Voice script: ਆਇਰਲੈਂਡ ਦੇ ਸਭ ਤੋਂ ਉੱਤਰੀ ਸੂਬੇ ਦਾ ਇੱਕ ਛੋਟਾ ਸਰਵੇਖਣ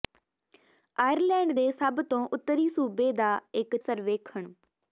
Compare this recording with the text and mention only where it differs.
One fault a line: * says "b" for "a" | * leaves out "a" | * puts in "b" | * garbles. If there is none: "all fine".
* leaves out "ਛੋਟਾ"